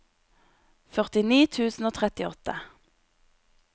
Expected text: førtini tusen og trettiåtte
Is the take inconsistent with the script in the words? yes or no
no